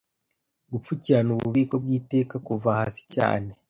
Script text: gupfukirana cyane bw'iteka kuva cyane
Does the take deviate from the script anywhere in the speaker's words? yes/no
yes